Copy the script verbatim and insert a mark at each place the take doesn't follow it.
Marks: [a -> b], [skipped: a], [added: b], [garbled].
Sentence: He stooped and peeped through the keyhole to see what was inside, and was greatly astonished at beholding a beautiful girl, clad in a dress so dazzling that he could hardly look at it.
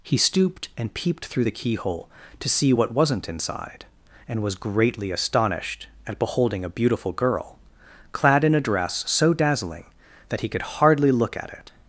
He stooped and peeped through the keyhole to see what [was -> wasn't] inside, and was greatly astonished at beholding a beautiful girl, clad in a dress so dazzling that he could hardly look at it.